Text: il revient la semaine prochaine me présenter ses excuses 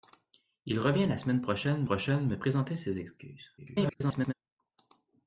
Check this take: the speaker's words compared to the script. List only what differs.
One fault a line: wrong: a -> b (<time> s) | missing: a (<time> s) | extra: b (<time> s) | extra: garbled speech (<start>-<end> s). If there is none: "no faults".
extra: prochaine (1.8 s)
extra: garbled speech (3.6-4.3 s)